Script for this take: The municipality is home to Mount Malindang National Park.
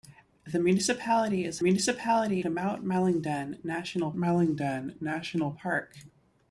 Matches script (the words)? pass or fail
fail